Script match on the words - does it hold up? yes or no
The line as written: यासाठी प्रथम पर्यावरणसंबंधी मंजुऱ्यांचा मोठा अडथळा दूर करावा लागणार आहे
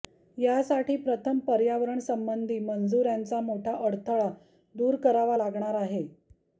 yes